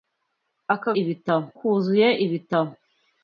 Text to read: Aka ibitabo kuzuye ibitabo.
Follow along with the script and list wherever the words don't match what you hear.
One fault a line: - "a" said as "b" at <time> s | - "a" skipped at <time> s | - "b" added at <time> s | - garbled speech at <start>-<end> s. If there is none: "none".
none